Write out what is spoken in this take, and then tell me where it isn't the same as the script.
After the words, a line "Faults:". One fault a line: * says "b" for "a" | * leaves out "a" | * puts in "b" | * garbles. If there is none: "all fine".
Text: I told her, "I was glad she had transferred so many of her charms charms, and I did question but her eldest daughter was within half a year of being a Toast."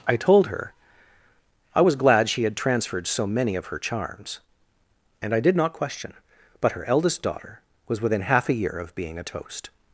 I told her, "I was glad she had transferred so many of her charms, and I did not question but her eldest daughter was within half a year of being a Toast."
Faults:
* leaves out "charms"
* puts in "not"